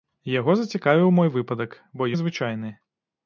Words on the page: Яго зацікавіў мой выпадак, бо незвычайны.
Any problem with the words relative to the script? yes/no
no